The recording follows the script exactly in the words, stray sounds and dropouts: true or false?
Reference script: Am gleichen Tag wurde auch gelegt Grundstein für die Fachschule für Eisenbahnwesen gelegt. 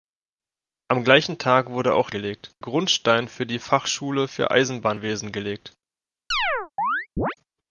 false